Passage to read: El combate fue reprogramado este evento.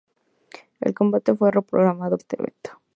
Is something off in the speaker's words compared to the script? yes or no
no